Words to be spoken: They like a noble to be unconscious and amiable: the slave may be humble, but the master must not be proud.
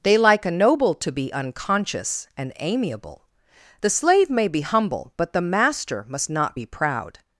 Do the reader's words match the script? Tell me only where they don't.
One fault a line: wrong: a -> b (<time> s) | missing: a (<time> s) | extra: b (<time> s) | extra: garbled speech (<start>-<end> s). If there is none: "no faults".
no faults